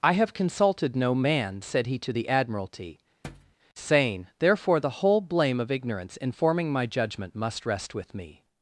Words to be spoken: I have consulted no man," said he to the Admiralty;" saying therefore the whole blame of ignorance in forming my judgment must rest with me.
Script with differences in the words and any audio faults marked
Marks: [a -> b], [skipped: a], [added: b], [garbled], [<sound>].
I have consulted no man," said he to the Admiralty;" [thud] saying therefore the whole blame of ignorance in forming my judgment must rest with me.